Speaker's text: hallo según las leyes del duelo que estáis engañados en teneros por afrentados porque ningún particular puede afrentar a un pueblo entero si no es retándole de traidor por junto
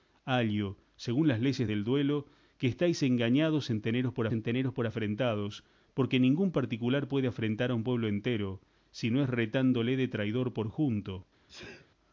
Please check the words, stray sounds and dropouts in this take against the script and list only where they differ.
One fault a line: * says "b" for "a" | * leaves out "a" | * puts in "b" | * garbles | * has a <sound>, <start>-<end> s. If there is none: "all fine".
* puts in "en teneros por"
* has a sneeze, 11.5-11.9 s